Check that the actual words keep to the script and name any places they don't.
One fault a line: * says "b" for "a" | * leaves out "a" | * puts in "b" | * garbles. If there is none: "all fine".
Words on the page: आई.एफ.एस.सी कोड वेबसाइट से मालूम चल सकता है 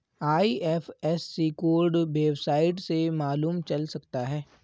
all fine